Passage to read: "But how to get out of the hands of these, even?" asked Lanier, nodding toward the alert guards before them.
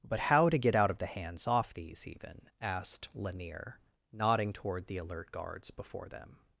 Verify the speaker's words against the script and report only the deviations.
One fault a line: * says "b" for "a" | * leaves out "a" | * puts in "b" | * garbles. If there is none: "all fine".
* says "off" for "of"